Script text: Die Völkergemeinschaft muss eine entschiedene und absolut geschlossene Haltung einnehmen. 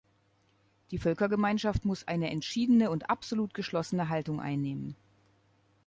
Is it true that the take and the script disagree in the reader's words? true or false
false